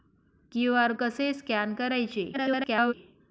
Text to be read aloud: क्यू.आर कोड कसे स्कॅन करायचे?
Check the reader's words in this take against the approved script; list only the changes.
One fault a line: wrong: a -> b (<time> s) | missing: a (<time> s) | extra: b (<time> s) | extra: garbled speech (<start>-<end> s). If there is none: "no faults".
missing: कोड (0.9 s)
extra: garbled speech (2.3-2.9 s)